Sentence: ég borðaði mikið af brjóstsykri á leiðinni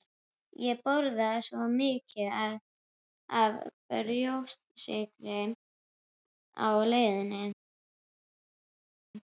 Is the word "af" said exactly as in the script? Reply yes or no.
yes